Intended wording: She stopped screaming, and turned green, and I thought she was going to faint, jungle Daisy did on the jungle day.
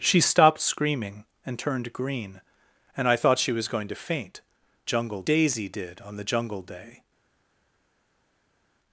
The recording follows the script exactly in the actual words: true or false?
true